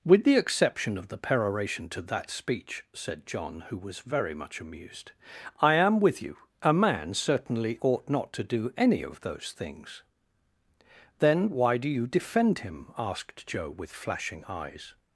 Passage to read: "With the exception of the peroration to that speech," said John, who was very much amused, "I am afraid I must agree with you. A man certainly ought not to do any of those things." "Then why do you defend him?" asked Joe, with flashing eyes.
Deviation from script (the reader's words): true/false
true